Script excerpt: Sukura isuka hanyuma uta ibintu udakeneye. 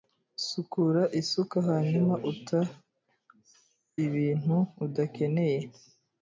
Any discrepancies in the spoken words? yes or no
no